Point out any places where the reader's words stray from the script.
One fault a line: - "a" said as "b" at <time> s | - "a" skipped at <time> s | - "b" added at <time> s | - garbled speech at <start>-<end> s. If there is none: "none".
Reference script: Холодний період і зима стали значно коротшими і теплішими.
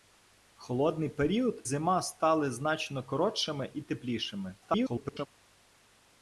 - "і" skipped at 1.6 s
- garbled speech at 4.6-5.3 s